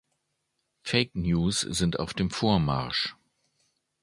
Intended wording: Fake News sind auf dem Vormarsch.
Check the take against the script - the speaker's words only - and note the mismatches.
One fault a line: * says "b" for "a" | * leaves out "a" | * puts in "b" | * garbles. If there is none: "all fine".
all fine